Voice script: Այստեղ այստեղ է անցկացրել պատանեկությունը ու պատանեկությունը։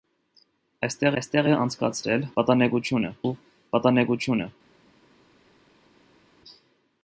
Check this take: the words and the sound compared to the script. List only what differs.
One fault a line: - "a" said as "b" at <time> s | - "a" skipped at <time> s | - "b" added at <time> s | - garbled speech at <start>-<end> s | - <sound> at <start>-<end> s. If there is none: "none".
none